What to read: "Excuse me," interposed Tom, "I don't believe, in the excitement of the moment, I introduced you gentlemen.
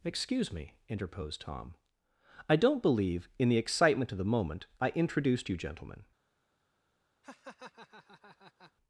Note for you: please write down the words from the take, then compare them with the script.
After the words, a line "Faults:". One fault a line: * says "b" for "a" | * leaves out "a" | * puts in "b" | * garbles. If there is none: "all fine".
"Excuse me," interposed Tom, "I don't believe, in the excitement of the moment, I introduced you gentlemen.
Faults:
all fine